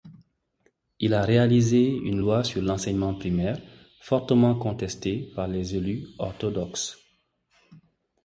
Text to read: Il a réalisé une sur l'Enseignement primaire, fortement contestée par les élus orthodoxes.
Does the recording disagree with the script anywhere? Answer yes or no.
yes